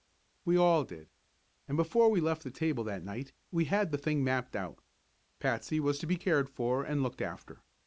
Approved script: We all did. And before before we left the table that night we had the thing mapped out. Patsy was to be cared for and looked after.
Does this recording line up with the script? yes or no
no